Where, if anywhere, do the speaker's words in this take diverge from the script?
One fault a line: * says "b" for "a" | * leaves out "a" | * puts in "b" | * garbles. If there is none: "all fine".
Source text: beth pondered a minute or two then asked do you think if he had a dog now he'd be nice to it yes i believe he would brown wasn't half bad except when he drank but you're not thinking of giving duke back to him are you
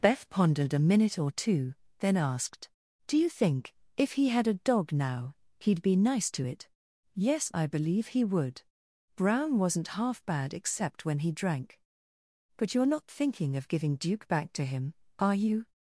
all fine